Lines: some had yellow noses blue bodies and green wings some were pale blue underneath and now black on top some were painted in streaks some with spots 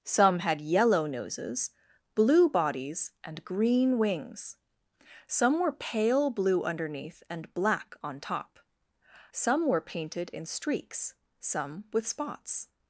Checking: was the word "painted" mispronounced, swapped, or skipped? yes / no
no